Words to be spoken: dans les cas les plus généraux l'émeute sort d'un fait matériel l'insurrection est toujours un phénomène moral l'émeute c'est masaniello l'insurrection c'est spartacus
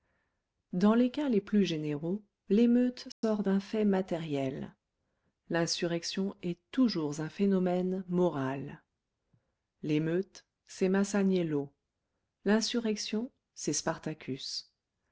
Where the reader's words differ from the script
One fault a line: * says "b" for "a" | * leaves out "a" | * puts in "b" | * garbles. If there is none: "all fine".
all fine